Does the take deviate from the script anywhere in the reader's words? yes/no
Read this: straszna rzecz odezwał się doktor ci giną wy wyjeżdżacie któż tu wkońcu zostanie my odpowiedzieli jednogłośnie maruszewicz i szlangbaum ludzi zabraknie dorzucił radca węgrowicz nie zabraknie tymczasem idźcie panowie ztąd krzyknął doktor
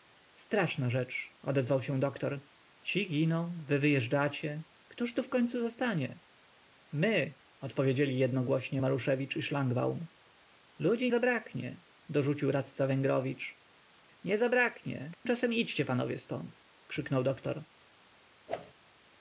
no